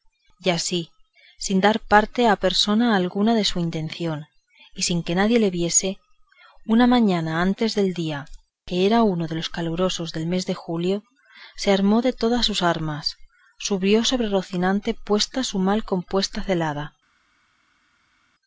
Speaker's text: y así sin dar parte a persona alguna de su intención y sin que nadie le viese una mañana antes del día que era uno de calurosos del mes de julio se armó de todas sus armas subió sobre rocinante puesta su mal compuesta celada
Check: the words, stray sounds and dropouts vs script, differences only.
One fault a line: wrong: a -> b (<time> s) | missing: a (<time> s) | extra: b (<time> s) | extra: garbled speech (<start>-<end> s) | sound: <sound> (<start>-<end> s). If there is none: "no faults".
extra: los (9.3 s)